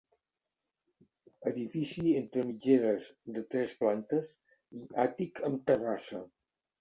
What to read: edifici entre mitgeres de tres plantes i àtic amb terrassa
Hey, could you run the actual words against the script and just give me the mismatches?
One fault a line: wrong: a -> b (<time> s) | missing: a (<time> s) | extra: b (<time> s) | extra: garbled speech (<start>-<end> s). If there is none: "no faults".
no faults